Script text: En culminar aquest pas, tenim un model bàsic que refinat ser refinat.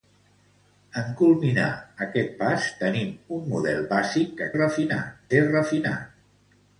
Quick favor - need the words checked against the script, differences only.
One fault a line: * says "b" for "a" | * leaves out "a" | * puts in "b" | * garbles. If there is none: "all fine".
all fine